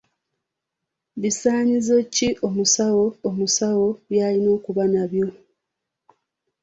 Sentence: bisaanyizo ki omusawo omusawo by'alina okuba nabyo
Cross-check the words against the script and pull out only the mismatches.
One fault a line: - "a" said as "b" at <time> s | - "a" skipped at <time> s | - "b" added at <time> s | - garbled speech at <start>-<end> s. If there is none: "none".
none